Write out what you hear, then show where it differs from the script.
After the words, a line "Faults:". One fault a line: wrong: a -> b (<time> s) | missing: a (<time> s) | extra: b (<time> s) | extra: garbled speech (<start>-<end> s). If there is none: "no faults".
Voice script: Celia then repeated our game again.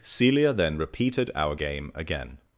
Celia then repeated our game again.
Faults:
no faults